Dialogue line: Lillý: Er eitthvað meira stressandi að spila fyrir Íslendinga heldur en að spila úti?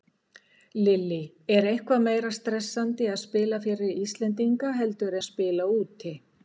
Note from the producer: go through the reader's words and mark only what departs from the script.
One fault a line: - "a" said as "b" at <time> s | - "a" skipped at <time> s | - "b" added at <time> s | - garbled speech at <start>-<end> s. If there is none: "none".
- "en" skipped at 5.2 s